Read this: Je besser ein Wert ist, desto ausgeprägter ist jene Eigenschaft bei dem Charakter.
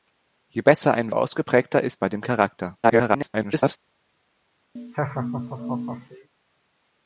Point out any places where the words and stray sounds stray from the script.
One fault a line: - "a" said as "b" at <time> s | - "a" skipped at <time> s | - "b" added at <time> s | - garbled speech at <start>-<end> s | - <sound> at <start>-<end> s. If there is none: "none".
- "Wert ist desto" skipped at 1.1 s
- "jene Eigenschaft" skipped at 2.0 s
- garbled speech at 2.8-3.8 s
- laugh at 4.8-6.3 s